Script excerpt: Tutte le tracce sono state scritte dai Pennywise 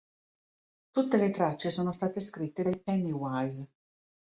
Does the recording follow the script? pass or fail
pass